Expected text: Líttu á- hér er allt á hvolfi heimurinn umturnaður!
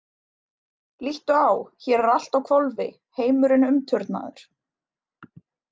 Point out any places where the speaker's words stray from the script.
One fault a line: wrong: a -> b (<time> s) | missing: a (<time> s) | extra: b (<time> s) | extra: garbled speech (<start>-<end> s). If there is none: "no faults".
no faults